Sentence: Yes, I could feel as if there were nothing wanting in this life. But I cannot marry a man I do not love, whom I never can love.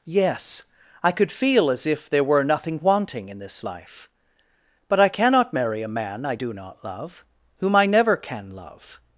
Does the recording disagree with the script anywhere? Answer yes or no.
no